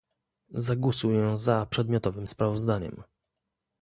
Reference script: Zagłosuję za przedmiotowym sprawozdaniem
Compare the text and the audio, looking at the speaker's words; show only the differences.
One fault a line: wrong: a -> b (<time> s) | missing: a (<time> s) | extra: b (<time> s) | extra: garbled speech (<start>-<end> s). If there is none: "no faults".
no faults